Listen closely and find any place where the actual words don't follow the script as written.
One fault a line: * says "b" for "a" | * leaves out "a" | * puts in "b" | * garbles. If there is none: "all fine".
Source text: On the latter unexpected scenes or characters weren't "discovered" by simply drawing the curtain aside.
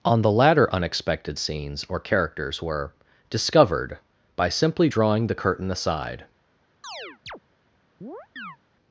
* says "were" for "weren't"